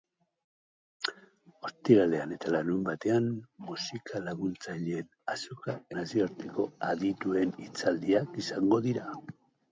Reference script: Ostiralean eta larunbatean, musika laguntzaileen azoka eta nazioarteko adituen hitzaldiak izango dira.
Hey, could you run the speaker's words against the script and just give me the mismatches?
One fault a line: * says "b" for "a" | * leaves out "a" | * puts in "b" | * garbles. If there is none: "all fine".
* leaves out "eta"